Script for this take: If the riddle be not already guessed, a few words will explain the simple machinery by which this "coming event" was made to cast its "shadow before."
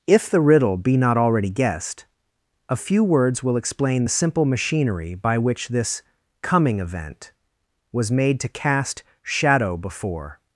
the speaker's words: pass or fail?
fail